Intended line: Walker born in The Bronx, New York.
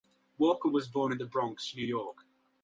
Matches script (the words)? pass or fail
fail